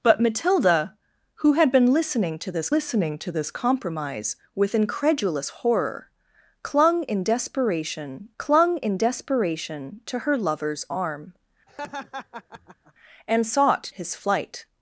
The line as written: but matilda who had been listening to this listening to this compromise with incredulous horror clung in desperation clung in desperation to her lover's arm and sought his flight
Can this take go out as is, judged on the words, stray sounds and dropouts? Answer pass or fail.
fail